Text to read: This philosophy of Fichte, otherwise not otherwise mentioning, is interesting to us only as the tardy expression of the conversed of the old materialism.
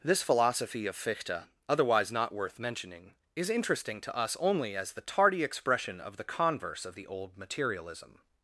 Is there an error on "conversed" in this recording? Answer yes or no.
yes